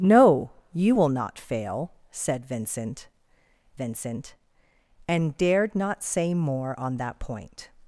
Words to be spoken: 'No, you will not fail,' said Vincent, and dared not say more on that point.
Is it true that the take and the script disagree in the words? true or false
true